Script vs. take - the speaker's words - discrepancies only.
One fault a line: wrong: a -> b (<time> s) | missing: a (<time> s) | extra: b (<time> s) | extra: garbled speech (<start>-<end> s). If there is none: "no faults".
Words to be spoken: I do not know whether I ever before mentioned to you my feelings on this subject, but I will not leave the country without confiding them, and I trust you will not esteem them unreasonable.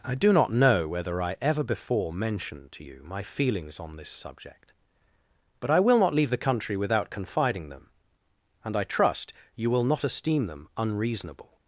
no faults